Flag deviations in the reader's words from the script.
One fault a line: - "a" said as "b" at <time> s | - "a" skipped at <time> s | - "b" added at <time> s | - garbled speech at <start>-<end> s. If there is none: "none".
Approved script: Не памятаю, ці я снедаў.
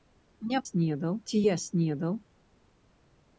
- "памятаю" said as "снедаў" at 0.7 s